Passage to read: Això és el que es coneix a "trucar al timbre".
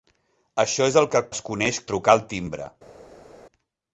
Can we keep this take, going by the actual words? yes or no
yes